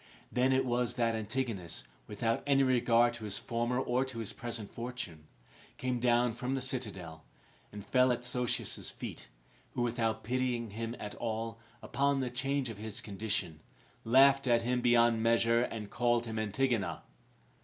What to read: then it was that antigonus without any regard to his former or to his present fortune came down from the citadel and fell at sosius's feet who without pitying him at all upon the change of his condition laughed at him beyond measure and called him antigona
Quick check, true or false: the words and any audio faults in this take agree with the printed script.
true